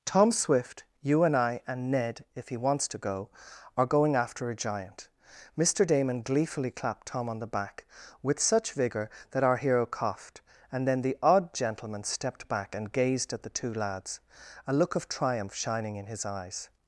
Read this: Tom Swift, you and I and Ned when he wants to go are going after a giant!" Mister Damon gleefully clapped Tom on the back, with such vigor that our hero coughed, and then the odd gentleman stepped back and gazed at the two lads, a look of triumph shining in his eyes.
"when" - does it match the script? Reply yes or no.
no